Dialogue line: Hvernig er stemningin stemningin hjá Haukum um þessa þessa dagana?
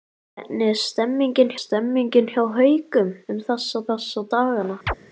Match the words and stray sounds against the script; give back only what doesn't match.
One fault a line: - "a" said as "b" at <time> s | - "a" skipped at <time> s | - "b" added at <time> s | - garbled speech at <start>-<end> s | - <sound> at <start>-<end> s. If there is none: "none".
- chirp at 4.9-4.9 s